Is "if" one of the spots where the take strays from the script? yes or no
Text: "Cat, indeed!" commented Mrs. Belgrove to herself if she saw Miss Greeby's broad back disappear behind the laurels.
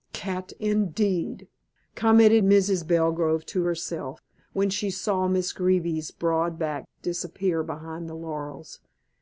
yes